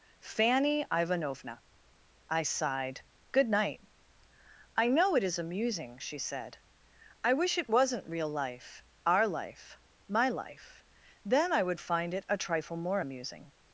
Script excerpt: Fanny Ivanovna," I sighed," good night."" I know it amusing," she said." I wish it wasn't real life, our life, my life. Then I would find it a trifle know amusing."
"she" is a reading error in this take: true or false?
false